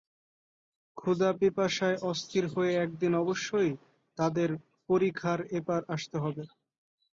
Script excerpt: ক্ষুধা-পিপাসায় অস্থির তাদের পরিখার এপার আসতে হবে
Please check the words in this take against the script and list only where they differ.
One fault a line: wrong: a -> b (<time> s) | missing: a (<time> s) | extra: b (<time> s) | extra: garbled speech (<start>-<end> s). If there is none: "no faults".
extra: হয়ে একদিন অবশ্যই (2.5 s)